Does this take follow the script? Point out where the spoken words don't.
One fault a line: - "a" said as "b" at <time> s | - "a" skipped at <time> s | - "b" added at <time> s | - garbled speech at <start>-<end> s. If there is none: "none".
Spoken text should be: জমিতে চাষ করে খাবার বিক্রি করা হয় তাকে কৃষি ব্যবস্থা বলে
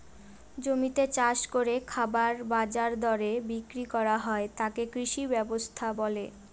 - "বাজার দরে" added at 2.5 s